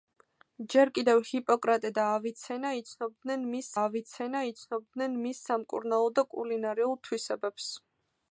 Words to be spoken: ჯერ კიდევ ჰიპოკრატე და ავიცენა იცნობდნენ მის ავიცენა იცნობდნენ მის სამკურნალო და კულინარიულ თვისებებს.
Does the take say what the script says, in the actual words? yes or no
yes